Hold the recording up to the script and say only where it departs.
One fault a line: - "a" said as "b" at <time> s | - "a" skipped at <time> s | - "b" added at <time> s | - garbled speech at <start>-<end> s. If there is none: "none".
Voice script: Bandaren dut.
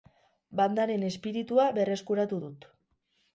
- "espiritua berreskuratu" added at 1.1 s